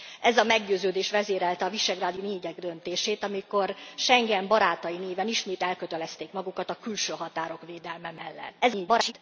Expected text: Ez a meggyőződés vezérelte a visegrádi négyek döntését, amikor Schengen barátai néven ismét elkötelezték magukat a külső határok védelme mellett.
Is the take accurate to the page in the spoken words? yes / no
no